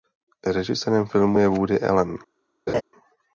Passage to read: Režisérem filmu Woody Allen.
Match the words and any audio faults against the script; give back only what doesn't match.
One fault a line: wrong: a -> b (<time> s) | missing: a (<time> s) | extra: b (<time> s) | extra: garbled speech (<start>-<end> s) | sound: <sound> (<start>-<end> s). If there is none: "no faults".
extra: je (1.4 s)
sound: laugh (2.7-2.8 s)